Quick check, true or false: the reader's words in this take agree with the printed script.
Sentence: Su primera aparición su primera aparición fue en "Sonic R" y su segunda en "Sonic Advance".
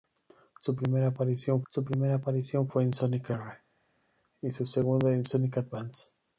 true